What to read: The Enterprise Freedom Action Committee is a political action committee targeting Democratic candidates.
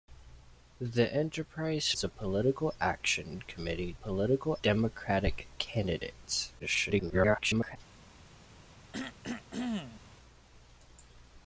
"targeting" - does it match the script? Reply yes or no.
no